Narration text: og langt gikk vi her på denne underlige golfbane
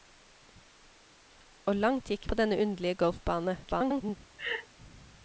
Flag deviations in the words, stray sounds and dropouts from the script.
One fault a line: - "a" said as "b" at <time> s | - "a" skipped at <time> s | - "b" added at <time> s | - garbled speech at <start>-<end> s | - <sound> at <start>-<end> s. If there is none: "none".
- "vi her" skipped at 2.3 s
- garbled speech at 3.6-4.2 s
- laugh at 4.4-4.7 s